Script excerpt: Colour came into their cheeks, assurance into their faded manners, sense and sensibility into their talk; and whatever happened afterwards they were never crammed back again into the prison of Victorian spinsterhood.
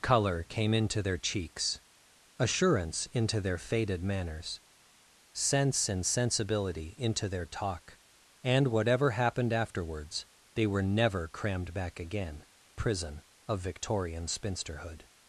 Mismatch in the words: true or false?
true